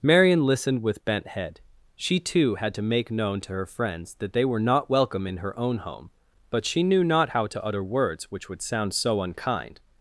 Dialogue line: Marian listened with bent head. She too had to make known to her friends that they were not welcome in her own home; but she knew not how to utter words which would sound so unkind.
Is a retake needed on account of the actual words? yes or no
no